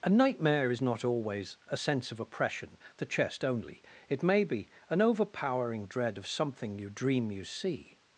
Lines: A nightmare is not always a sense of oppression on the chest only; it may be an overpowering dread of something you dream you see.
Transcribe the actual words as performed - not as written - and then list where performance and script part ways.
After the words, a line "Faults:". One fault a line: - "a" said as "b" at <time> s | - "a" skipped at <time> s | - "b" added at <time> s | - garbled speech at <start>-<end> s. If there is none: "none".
A nightmare is not always a sense of oppression the chest only; it may be an overpowering dread of something you dream you see.
Faults:
- "on" skipped at 2.8 s